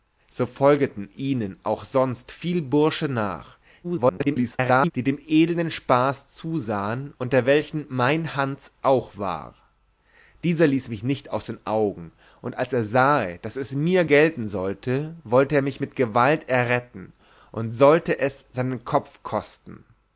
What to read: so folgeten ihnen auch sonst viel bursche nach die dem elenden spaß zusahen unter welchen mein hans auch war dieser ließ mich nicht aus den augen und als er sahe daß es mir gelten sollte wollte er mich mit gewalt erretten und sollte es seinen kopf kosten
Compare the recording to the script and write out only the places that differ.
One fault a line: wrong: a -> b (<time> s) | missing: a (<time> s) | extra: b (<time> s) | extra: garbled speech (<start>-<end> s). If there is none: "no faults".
extra: garbled speech (3.8-4.9 s)